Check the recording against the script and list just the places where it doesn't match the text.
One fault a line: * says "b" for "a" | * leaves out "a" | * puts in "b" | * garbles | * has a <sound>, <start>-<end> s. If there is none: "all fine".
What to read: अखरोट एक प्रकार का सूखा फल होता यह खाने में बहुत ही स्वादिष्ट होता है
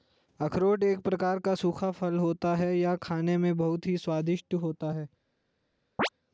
* puts in "है"
* has a chirp, 6.0-6.1 s